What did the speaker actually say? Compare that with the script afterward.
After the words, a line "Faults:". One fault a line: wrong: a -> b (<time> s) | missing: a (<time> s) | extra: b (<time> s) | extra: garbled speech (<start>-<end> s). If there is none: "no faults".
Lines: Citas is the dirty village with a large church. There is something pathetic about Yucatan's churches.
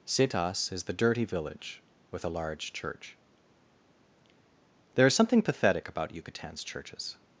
Citas is the dirty village with a large church. There is something pathetic about Yucatan's churches.
Faults:
no faults